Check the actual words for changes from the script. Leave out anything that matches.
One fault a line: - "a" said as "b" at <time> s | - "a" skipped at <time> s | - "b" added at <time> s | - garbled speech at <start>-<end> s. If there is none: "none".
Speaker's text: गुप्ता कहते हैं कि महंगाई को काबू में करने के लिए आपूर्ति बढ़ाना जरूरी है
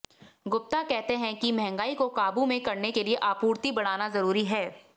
none